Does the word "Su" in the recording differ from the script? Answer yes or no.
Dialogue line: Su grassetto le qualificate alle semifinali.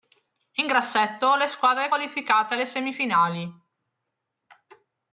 yes